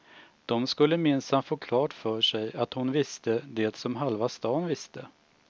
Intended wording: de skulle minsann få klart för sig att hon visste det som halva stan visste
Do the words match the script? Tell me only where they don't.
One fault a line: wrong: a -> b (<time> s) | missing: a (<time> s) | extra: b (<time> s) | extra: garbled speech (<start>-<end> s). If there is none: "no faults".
no faults